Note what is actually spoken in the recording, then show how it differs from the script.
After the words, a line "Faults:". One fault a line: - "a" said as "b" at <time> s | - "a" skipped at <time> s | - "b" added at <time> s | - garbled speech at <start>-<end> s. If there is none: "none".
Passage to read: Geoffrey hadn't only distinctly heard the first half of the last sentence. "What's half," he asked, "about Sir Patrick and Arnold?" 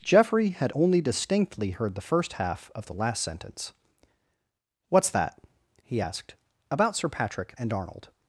Geoffrey had only distinctly heard the first half of the last sentence. "What's that," he asked, "about Sir Patrick and Arnold?"
Faults:
- "hadn't" said as "had" at 0.5 s
- "half" said as "that" at 5.1 s